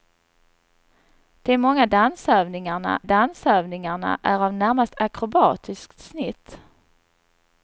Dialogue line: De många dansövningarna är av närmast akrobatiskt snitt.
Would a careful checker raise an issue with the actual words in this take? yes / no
yes